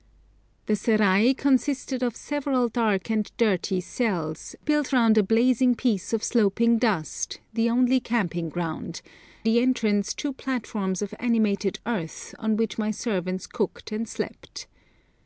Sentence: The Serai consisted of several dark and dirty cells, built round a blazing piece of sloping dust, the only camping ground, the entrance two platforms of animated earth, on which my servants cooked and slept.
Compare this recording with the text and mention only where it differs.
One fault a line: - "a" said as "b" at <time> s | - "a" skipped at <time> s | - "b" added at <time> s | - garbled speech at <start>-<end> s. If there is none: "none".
none